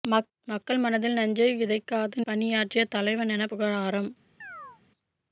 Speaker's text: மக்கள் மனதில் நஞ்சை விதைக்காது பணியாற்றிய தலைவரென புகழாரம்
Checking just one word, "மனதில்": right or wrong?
right